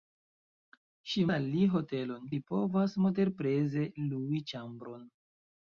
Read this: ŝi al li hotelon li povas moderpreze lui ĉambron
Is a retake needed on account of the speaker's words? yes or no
no